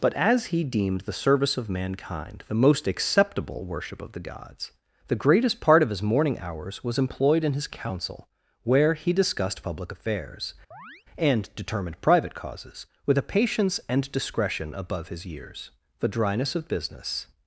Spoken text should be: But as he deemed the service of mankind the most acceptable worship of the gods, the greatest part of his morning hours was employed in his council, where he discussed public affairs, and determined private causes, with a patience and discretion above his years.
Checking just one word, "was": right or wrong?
right